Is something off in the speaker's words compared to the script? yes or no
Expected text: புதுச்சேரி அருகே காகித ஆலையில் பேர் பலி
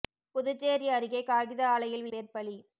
no